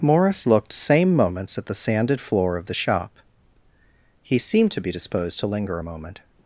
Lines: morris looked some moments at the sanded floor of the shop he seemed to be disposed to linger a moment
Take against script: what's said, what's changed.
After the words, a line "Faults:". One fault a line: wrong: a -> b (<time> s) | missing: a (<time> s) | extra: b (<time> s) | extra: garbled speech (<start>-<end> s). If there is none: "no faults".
morris looked same moments at the sanded floor of the shop he seemed to be disposed to linger a moment
Faults:
wrong: some -> same (0.7 s)